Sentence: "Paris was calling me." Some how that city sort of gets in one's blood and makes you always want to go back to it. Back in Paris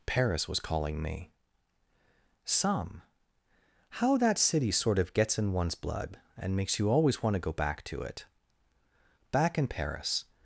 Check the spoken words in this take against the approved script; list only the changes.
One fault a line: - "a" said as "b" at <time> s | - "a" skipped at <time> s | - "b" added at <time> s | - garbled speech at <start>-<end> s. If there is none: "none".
none